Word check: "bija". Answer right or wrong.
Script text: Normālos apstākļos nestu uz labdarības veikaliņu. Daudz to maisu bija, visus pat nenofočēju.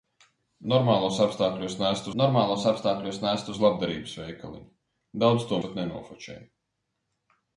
wrong